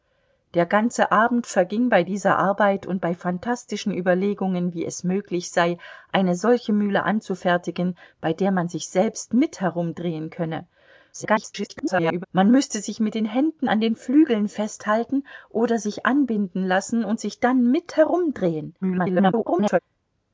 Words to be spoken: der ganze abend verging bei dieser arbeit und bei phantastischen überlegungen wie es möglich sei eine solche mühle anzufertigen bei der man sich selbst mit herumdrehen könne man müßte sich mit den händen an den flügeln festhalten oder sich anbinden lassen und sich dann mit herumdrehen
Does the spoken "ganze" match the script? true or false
true